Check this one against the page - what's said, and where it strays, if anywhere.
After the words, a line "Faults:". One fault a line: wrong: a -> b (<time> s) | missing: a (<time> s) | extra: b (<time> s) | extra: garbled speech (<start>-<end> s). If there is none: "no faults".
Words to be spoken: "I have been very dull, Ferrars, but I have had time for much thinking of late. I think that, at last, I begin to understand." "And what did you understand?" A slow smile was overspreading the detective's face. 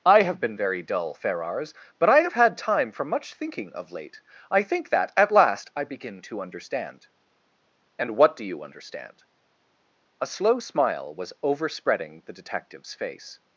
"I have been very dull, Ferrars, but I have had time for much thinking of late. I think that, at last, I begin to understand." "And what do you understand?" A slow smile was overspreading the detective's face.
Faults:
wrong: did -> do (8.4 s)